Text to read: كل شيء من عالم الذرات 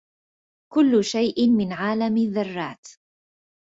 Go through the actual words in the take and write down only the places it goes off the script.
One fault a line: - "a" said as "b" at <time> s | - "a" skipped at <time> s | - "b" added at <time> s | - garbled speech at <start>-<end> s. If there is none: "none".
none